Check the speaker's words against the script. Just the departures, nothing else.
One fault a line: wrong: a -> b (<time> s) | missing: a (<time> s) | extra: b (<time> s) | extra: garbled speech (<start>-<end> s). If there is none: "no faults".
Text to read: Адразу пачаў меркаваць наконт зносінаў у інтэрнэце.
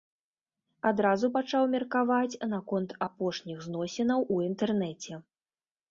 extra: апошніх (3.1 s)